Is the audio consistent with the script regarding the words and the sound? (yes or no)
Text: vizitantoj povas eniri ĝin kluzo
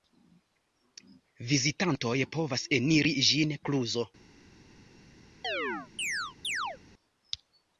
no